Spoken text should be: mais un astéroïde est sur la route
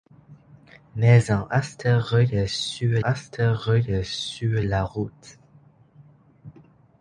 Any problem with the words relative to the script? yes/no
yes